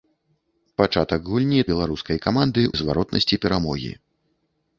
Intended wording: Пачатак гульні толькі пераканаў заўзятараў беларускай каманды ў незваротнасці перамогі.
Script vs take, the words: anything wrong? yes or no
yes